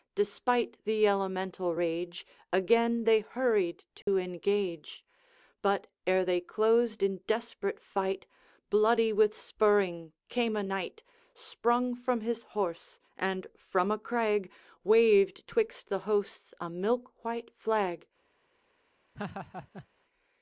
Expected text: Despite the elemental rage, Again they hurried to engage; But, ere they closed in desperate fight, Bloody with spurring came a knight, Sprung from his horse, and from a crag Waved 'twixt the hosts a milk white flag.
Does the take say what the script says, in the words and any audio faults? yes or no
no